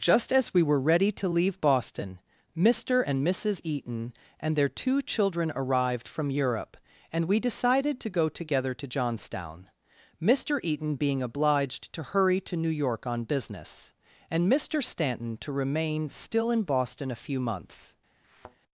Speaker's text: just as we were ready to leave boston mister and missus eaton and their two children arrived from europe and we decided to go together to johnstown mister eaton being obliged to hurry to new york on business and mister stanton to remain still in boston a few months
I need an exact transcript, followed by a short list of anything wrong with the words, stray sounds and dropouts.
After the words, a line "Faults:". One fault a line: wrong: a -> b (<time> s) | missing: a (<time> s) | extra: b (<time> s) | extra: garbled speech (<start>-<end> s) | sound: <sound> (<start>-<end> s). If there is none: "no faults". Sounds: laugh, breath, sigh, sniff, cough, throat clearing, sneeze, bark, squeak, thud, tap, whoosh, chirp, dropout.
just as we were ready to leave boston mister and missus eaton and their two children arrived from europe and we decided to go together to johnstown mister eaton being obliged to hurry to new york on business and mister stanton to remain still in boston a few months
Faults:
sound: thud (18.2-18.6 s)